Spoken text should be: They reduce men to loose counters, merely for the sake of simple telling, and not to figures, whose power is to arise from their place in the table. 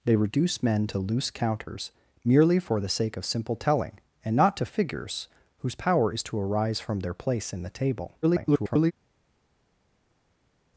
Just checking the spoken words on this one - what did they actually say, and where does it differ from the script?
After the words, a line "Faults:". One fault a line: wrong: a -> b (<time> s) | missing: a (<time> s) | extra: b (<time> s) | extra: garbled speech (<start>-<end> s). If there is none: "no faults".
They reduce men to loose counters, merely for the sake of simple telling, and not to figures, whose power is to arise from their place in the table. [garbled]
Faults:
extra: garbled speech (8.2-8.9 s)